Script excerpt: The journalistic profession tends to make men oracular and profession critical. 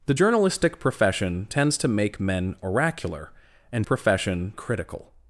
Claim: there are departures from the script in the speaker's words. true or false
false